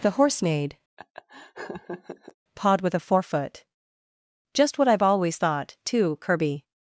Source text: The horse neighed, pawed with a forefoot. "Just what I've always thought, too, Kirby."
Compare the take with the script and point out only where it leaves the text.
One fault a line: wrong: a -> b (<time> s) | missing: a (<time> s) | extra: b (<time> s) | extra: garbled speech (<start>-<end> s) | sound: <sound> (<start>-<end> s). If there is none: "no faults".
sound: laugh (1.0-2.3 s)